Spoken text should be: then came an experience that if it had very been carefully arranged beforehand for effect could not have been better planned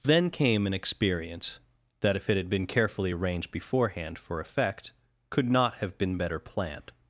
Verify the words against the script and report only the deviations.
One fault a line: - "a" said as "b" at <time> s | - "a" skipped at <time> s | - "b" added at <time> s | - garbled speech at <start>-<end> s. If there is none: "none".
- "very" skipped at 2.5 s